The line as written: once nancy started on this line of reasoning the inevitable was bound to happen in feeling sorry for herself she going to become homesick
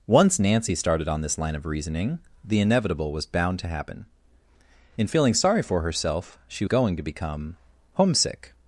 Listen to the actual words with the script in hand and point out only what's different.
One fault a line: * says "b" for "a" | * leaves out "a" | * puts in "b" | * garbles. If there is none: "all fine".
all fine